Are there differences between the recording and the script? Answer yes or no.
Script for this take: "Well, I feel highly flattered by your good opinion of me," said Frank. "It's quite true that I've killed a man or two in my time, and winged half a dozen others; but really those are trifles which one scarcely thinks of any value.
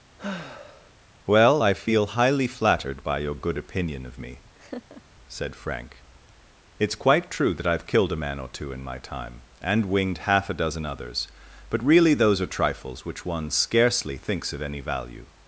no